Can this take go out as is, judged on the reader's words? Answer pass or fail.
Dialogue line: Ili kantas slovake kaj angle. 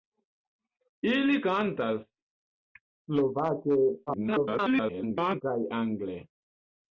fail